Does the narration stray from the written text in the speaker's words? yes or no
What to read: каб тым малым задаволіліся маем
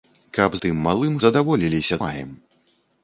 no